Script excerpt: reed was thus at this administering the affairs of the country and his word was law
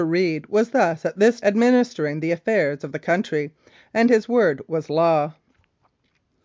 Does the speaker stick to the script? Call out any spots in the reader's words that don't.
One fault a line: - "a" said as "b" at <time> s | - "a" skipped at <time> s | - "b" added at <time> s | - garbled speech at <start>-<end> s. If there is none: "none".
none